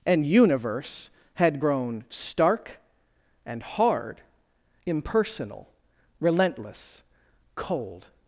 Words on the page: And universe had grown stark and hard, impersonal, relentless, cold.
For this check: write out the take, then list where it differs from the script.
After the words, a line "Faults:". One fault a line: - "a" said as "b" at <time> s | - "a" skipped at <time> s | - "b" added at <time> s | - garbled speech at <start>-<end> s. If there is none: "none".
And universe had grown stark and hard, impersonal, relentless, cold.
Faults:
none